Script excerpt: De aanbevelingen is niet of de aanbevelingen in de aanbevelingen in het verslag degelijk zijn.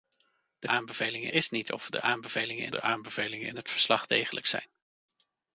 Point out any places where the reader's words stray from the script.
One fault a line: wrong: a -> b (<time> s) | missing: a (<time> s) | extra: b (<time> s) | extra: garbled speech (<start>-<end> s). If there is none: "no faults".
no faults